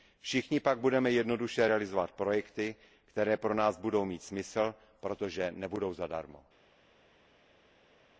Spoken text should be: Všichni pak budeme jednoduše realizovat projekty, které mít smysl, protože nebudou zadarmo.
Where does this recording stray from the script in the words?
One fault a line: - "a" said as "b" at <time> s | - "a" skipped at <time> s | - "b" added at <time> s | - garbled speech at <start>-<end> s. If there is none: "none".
- "pro nás budou" added at 3.4 s